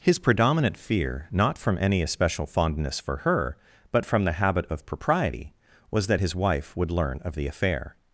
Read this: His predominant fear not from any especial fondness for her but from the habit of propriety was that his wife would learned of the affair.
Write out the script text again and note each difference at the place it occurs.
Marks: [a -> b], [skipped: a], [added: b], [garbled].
His predominant fear not from any especial fondness for her but from the habit of propriety was that his wife would [learned -> learn] of the affair.